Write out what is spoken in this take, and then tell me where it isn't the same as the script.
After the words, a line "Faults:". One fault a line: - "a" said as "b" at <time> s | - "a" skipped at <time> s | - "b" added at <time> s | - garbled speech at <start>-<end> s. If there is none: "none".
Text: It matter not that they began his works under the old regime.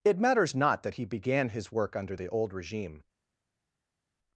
It matters not that he began his work under the old regime.
Faults:
- "matter" said as "matters" at 0.2 s
- "they" said as "he" at 0.9 s
- "works" said as "work" at 1.7 s